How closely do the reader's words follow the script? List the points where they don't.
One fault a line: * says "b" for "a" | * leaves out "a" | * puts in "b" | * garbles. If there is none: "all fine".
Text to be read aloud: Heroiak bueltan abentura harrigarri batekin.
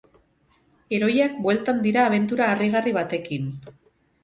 * puts in "dira"